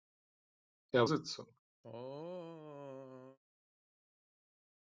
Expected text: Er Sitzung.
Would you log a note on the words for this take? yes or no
no